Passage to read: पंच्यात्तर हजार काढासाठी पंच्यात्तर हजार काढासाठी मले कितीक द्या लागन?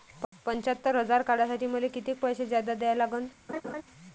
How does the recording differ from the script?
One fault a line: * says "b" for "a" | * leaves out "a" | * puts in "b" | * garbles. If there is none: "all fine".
* says "मले कितीक पैसे जादा" for "पंच्यात्तर हजार काढासाठी मले कितीक"